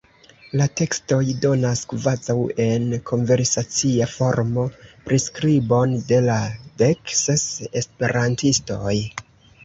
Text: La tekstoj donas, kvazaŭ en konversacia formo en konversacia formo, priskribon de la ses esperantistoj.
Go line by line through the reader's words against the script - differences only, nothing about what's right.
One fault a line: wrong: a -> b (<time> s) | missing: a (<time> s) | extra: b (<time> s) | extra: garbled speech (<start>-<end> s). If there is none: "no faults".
missing: en konversacia formo (4.6 s)
extra: dek (6.8 s)